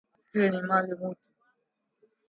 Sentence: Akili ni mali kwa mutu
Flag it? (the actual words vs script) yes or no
yes